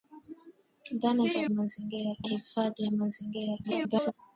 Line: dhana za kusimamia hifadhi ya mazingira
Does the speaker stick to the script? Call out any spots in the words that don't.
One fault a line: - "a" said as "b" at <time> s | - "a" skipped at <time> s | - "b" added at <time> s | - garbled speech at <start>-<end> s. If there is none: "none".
- "kusimamia" said as "mazingira" at 1.5 s
- garbled speech at 3.6-4.1 s